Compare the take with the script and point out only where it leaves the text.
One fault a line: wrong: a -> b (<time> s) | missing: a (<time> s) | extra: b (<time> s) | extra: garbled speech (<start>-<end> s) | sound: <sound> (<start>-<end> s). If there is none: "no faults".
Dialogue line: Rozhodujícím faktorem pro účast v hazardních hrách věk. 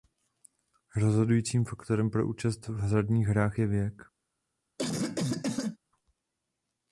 extra: je (3.6 s)
sound: cough (4.8-5.8 s)